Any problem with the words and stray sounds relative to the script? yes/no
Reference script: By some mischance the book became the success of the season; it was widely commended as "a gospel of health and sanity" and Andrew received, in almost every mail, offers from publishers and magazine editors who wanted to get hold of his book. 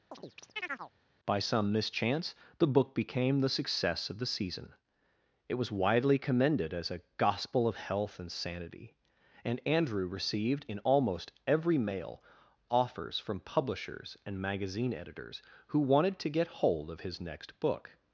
yes